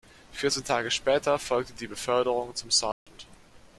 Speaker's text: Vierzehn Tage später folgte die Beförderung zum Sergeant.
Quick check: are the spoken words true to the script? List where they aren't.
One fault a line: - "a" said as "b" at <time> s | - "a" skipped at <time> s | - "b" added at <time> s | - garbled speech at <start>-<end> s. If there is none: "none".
none